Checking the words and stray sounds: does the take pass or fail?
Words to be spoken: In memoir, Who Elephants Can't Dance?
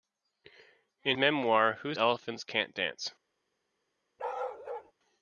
fail